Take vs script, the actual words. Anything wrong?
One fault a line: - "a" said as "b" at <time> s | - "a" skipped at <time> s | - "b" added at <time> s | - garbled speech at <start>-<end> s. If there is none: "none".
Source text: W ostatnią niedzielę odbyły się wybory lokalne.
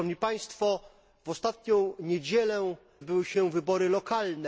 none